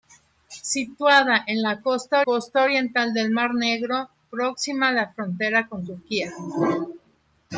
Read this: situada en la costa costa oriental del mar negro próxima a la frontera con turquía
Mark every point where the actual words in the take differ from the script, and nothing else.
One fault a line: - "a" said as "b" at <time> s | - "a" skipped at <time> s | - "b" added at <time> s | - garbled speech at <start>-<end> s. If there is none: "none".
none